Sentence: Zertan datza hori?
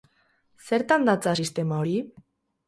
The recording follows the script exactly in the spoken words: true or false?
false